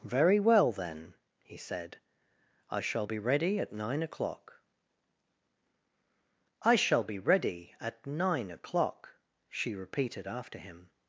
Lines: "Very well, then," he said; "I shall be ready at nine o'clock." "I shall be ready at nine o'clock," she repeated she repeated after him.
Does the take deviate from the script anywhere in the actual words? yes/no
yes